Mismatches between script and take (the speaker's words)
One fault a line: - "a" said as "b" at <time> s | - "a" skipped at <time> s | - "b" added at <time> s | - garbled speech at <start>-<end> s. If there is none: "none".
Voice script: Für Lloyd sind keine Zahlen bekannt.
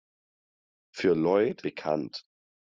- "sind keine Zahlen" skipped at 1.6 s